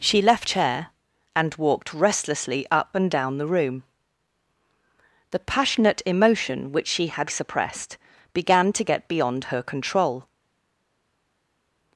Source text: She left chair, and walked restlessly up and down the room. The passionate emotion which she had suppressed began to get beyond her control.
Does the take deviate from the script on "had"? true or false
false